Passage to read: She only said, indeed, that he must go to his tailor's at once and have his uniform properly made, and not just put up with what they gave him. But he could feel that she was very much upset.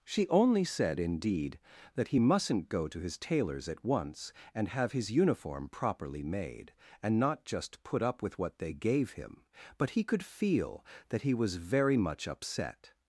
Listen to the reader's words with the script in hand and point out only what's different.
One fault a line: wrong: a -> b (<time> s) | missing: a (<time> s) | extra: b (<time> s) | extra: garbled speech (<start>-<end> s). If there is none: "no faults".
wrong: must -> mustn't (2.2 s)
wrong: she -> he (11.2 s)